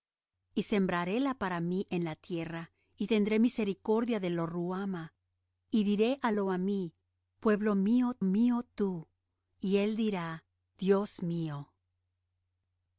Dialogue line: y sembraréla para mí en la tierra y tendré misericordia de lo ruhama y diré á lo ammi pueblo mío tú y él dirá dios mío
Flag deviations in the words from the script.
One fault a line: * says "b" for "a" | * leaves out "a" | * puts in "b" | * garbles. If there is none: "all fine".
* puts in "mío"